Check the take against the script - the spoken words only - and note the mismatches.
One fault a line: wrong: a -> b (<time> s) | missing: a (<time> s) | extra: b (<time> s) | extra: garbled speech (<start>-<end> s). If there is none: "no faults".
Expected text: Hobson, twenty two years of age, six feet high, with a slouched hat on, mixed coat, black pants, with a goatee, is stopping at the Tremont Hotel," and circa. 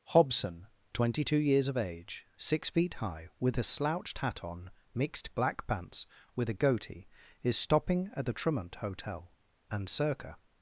missing: coat (5.3 s)